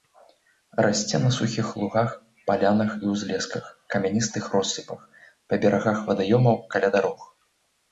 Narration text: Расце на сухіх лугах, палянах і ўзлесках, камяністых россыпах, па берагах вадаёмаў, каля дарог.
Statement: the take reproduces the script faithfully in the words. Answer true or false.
true